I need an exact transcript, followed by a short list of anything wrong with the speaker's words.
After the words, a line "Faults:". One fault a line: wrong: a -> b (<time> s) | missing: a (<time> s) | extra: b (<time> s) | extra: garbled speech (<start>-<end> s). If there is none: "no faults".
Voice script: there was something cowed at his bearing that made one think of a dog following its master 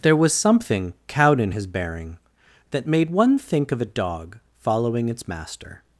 there was something cowed in his bearing that made one think of a dog following its master
Faults:
wrong: at -> in (1.4 s)